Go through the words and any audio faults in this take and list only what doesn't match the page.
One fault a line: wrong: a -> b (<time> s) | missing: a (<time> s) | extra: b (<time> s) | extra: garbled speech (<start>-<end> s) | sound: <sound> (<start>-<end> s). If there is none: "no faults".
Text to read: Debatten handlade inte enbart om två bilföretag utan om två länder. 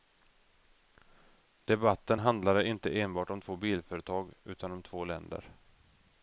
no faults